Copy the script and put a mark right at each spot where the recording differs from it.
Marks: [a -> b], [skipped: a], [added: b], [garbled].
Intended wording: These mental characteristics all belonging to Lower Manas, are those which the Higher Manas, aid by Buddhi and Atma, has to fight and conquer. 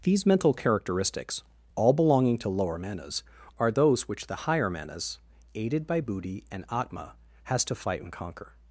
These mental characteristics all belonging to Lower Manas, are those which the Higher Manas, [aid -> aided] by Buddhi and Atma, has to fight and conquer.